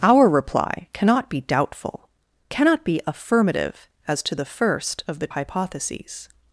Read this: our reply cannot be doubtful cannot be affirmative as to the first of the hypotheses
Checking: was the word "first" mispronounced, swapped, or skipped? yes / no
no